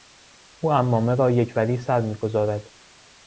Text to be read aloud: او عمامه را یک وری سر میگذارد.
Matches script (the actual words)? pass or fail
pass